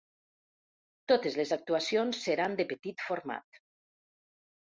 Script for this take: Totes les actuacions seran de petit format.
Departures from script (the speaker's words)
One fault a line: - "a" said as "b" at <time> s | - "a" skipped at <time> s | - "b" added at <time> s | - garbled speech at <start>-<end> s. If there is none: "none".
none